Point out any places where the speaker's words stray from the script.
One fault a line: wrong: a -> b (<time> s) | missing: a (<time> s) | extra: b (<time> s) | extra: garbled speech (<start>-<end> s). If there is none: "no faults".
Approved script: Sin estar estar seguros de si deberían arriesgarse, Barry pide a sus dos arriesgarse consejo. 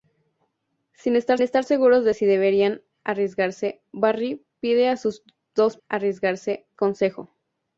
no faults